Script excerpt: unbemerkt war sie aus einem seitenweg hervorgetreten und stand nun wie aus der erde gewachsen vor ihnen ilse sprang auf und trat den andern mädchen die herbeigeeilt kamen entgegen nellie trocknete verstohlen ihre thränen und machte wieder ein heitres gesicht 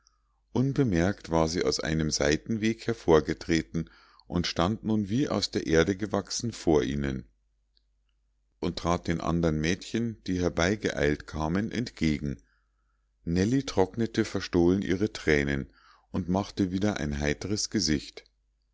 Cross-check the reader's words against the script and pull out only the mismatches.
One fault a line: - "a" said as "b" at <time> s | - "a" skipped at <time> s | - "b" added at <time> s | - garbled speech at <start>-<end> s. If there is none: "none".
- "ilse sprang auf" skipped at 7.3 s